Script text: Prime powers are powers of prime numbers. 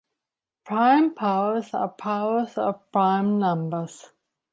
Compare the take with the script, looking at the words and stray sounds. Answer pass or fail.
pass